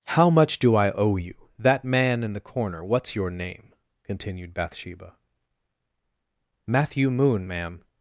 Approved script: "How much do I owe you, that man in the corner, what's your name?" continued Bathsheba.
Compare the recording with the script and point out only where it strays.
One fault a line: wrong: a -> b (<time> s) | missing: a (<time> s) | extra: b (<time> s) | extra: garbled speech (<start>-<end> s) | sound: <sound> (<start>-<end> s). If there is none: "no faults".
extra: Matthew Moon ma'am (6.7 s)